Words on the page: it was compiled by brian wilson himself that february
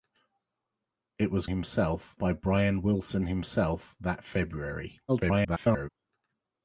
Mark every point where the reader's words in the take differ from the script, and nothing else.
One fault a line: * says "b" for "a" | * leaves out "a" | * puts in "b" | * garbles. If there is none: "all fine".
* says "himself" for "compiled"
* garbles